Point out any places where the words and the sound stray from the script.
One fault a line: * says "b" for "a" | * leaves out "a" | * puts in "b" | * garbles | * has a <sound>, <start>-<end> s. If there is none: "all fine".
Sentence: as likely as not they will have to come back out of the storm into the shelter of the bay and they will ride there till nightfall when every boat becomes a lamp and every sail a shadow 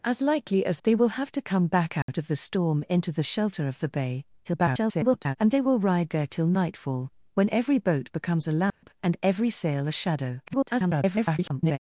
* leaves out "not"
* has a dropout, 2.0-2.1 s
* garbles
* has a dropout, 8.7-8.8 s
* garbles